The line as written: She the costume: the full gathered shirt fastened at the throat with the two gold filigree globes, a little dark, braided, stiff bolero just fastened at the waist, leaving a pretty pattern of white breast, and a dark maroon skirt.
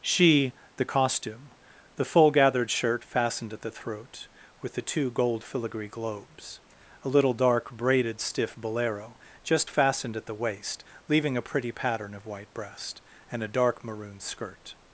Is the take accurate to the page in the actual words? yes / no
yes